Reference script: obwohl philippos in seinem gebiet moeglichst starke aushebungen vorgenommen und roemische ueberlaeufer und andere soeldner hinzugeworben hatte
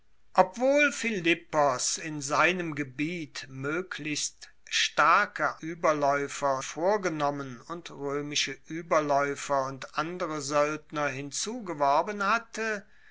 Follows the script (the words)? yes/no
no